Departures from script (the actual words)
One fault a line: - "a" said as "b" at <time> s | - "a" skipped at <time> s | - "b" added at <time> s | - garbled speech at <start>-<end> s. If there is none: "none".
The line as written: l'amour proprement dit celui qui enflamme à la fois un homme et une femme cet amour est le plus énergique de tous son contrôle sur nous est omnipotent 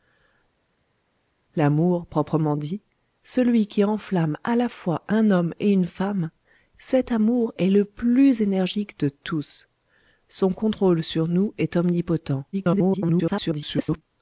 - garbled speech at 12.5-14.0 s